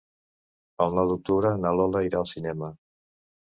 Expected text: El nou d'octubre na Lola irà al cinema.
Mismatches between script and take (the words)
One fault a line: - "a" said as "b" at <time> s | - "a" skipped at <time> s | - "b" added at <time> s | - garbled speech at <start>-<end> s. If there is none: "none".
none